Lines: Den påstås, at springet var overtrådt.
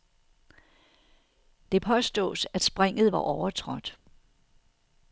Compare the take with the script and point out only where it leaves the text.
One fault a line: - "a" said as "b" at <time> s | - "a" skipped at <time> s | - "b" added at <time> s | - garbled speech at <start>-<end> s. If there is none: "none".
- "Den" said as "Det" at 1.7 s